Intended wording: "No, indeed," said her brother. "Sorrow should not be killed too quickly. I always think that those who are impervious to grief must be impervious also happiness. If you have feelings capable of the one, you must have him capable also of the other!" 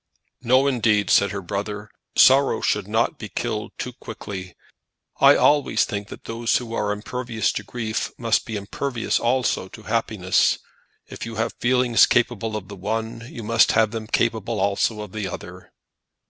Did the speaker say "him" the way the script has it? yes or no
no